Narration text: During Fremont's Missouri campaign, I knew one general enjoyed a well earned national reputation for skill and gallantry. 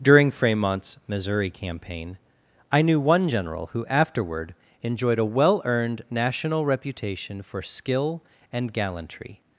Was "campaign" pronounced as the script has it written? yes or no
yes